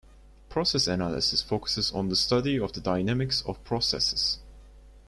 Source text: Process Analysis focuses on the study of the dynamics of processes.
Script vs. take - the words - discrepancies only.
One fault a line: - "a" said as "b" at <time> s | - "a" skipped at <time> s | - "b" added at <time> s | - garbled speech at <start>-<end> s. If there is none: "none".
none